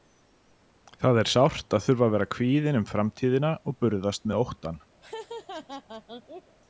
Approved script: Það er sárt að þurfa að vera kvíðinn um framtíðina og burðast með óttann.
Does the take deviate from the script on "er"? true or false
false